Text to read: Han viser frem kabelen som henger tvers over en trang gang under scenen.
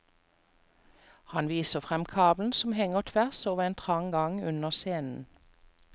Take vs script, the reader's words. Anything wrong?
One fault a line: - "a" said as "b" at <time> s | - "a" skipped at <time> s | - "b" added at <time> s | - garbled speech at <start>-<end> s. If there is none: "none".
none